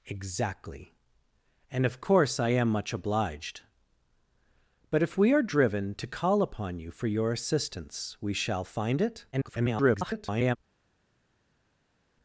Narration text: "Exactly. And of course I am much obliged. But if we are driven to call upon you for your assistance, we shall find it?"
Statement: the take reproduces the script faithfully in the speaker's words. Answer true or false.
false